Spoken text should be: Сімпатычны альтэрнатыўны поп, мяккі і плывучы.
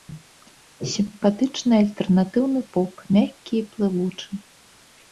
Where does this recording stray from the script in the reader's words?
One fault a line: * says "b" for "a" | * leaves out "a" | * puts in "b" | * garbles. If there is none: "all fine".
all fine